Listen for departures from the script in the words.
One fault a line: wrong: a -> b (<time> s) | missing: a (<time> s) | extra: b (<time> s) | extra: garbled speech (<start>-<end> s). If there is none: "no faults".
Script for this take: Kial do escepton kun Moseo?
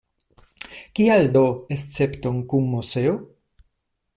no faults